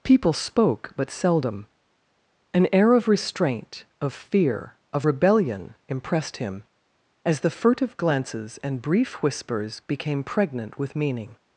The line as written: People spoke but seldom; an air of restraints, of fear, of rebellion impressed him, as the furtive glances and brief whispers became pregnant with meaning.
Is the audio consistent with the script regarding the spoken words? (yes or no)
no